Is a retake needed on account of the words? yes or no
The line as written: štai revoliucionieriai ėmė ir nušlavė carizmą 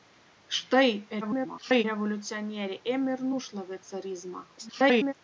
yes